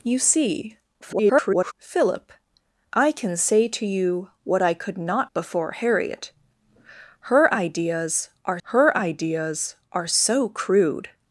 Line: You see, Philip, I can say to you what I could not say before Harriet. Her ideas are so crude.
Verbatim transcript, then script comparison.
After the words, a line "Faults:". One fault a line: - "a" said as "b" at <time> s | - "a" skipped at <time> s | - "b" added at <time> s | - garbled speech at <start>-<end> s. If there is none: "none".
You see, [garbled] Philip, I can say to you what I could not before Harriet. Her ideas are her ideas are so crude.
Faults:
- garbled speech at 1.0-1.7 s
- "say" skipped at 5.3 s
- "her ideas are" added at 8.6 s